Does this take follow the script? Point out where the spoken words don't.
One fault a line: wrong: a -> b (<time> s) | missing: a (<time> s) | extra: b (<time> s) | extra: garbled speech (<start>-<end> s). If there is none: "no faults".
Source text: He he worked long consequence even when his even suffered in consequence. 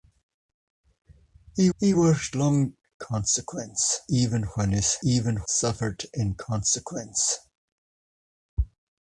no faults